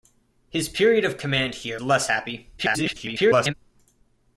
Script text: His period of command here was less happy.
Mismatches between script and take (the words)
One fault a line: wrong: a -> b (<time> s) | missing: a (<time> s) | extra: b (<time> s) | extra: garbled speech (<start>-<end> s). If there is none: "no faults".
missing: was (1.8 s)
extra: garbled speech (2.6-3.5 s)